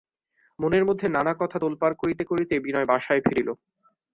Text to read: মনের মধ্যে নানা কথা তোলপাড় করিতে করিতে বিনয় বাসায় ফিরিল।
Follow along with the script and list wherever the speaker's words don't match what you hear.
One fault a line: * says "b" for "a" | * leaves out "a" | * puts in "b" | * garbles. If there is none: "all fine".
all fine